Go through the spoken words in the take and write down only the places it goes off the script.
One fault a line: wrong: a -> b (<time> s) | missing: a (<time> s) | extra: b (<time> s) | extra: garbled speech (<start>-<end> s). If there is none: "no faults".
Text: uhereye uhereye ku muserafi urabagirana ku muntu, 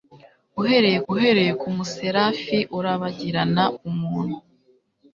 no faults